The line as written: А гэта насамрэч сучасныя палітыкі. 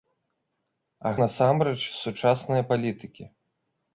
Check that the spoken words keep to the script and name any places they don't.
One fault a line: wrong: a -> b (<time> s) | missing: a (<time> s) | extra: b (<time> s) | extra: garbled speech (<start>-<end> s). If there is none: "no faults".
missing: гэта (1.1 s)